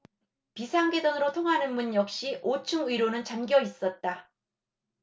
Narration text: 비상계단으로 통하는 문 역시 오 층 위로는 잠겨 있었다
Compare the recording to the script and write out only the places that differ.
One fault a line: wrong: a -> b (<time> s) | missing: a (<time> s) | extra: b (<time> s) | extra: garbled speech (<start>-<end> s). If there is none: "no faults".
no faults